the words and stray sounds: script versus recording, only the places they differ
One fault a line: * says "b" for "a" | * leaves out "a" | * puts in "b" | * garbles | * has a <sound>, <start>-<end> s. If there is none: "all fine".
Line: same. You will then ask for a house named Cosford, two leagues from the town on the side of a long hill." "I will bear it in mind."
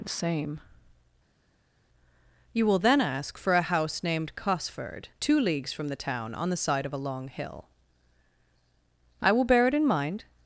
all fine